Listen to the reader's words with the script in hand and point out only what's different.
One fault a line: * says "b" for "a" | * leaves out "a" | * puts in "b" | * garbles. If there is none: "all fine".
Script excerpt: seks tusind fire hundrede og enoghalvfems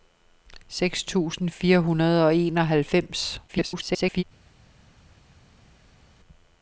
* garbles